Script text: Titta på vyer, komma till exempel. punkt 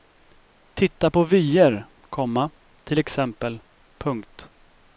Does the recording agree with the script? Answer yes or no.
yes